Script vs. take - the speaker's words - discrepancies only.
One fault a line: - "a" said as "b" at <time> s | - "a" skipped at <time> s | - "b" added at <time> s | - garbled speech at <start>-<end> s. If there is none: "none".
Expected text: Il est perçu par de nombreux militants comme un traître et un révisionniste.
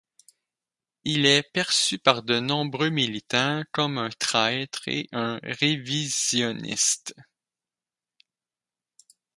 none